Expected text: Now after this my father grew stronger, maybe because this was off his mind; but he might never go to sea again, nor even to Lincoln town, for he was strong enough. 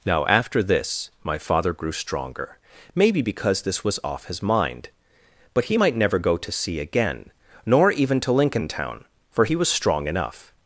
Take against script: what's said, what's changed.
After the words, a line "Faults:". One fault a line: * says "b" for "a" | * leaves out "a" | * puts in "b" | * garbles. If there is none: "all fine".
Now after this my father grew stronger, maybe because this was off his mind; but he might never go to sea again, nor even to Lincoln town, for he was strong enough.
Faults:
all fine